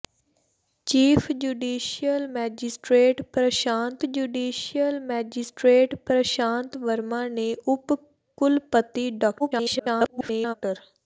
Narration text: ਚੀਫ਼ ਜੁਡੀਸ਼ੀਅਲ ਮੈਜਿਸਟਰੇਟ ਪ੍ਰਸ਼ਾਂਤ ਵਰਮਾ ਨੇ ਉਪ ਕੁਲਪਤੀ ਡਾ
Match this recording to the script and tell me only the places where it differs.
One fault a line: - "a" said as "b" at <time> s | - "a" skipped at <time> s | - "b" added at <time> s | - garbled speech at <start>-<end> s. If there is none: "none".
- "ਜੁਡੀਸ਼ੀਅਲ ਮੈਜਿਸਟਰੇਟ ਪ੍ਰਸ਼ਾਂਤ" added at 4.0 s
- garbled speech at 9.4-10.5 s